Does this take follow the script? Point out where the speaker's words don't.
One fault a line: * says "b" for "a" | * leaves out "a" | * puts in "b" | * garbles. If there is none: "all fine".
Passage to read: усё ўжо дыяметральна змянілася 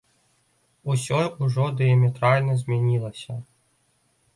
all fine